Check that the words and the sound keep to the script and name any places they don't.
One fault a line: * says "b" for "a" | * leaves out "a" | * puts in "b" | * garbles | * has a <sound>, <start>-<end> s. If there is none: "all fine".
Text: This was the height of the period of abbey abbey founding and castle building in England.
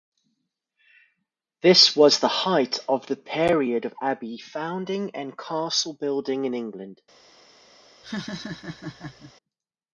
* leaves out "abbey"
* has a laugh, 8.0-9.3 s